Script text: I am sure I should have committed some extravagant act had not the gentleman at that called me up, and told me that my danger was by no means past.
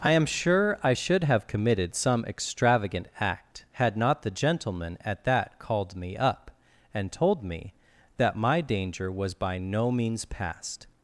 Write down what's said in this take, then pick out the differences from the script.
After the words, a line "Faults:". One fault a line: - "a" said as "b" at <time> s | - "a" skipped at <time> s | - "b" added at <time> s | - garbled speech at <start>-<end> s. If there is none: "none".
I am sure I should have committed some extravagant act had not the gentleman at that called me up, and told me that my danger was by no means past.
Faults:
none